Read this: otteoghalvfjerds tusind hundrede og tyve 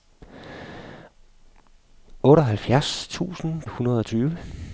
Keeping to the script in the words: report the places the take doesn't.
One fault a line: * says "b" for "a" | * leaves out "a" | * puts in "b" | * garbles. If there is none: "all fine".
all fine